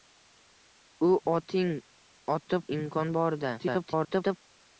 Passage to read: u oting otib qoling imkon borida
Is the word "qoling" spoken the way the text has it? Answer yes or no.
no